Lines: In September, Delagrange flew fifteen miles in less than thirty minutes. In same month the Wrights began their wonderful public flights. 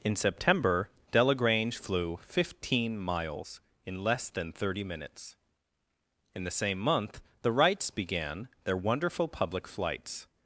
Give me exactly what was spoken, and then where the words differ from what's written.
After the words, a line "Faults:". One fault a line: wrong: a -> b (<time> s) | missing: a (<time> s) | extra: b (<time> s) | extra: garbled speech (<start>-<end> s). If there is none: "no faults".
In September, Delagrange flew fifteen miles in less than thirty minutes. In the same month the Wrights began their wonderful public flights.
Faults:
extra: the (6.4 s)